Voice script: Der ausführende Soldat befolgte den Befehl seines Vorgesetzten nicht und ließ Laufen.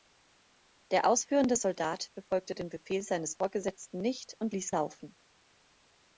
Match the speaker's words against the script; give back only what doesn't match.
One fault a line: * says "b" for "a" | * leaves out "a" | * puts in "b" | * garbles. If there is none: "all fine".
all fine